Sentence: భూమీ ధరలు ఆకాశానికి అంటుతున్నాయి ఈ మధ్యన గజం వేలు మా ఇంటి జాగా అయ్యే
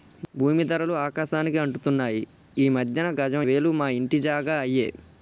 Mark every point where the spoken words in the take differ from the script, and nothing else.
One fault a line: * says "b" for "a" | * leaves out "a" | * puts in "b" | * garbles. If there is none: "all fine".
all fine